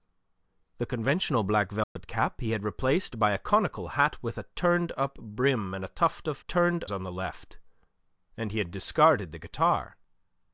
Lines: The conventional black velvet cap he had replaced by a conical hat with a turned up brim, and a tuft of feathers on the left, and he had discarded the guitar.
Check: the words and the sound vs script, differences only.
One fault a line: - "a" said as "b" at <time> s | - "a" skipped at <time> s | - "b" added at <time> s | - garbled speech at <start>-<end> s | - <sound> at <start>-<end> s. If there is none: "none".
- dropout at 1.8-2.0 s
- "feathers" said as "turned" at 6.5 s